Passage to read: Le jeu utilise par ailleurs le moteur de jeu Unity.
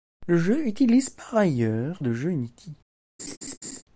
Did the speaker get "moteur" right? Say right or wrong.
wrong